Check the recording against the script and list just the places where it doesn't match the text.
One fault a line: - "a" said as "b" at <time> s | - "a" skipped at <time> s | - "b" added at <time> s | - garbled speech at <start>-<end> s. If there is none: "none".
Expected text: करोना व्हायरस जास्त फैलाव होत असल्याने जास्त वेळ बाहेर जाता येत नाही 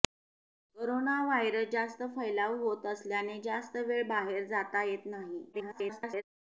- garbled speech at 5.5-6.2 s